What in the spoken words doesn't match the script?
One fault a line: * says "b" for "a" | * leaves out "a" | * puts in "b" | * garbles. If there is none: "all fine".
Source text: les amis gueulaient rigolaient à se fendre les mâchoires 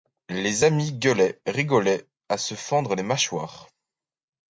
all fine